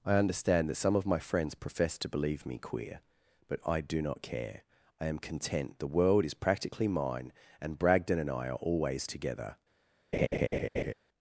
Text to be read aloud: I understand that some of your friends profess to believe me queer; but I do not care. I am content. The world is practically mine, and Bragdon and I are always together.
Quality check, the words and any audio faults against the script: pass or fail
fail